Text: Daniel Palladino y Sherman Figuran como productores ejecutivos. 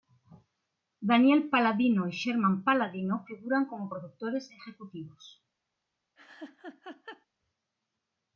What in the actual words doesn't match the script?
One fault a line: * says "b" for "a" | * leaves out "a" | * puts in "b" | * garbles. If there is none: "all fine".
* puts in "Palladino"